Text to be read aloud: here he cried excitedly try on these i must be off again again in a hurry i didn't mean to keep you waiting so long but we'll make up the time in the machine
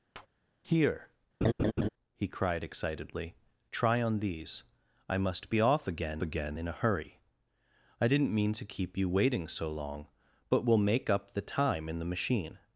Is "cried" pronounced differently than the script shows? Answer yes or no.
no